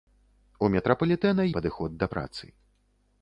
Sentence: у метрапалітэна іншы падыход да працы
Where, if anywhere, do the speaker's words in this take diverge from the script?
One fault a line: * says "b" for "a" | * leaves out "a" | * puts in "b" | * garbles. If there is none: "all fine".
* leaves out "іншы"